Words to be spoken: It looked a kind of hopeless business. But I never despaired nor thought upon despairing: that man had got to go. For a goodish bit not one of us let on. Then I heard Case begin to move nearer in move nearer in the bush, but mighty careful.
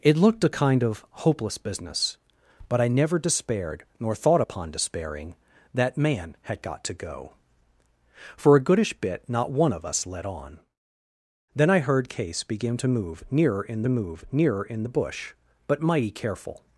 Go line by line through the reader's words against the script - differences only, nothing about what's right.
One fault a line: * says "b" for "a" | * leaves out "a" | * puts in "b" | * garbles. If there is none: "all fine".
all fine